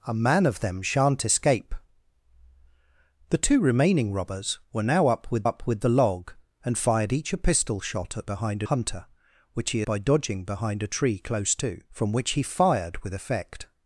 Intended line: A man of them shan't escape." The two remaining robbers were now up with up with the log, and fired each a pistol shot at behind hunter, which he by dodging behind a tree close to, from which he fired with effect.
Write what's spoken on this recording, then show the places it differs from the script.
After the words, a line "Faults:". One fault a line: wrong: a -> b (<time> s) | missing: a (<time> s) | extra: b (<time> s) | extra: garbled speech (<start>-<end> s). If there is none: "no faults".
A man of them shan't escape." The two remaining robbers were now up with up with the log, and fired each a pistol shot at behind hunter, which he by dodging behind a tree close to, from which he fired with effect.
Faults:
no faults